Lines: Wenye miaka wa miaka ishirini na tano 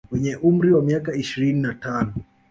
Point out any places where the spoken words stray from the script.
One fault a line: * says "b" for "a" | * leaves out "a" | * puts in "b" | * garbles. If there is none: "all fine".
* says "umri" for "miaka"